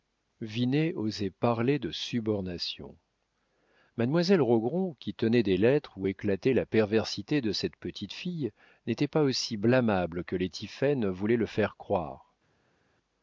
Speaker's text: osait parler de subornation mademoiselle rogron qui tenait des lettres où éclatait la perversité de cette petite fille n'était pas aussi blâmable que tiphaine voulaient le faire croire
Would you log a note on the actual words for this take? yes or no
yes